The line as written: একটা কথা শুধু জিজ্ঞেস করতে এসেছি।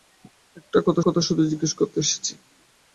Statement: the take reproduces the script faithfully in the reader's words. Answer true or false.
false